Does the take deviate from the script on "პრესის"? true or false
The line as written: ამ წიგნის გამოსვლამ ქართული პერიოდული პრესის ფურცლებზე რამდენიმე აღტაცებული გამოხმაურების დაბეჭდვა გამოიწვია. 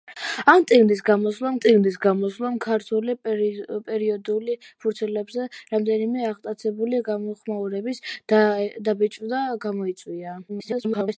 true